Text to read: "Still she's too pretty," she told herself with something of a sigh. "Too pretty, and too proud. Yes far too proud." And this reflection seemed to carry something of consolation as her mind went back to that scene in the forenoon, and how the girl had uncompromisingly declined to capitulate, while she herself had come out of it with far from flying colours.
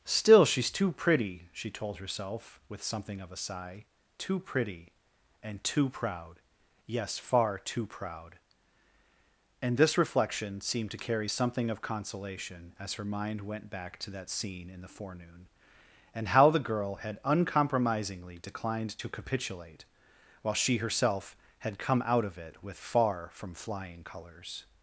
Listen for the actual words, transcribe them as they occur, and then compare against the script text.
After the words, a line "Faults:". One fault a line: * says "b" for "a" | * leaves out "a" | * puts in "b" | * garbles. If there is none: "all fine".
"Still she's too pretty," she told herself with something of a sigh. "Too pretty, and too proud. Yes far too proud." And this reflection seemed to carry something of consolation as her mind went back to that scene in the forenoon, and how the girl had uncompromisingly declined to capitulate, while she herself had come out of it with far from flying colours.
Faults:
all fine